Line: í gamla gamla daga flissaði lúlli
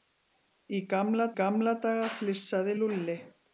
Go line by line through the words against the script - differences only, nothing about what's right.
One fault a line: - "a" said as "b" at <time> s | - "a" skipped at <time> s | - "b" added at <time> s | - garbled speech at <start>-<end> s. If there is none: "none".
none